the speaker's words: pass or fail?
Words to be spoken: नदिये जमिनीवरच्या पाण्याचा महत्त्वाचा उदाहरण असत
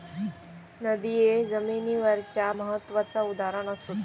fail